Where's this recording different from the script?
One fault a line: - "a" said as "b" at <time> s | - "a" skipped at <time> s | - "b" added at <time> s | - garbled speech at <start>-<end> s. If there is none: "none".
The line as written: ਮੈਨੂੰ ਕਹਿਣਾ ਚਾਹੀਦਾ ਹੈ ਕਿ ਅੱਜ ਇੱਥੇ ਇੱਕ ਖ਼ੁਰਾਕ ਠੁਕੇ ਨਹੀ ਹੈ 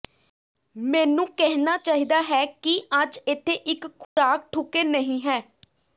none